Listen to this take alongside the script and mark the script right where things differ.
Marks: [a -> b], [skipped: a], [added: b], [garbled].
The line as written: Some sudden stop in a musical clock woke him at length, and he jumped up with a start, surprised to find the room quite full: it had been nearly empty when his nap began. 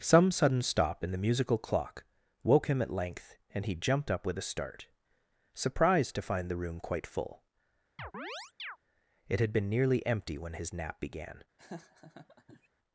Some sudden stop in [a -> the] musical clock woke him at length, and he jumped up with a start, surprised to find the room quite full: it had been nearly empty when his nap began.